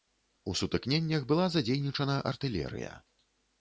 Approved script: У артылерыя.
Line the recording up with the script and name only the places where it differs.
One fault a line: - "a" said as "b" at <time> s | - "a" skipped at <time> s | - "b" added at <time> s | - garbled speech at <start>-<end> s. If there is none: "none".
- "сутыкненнях была задзейнічана" added at 0.6 s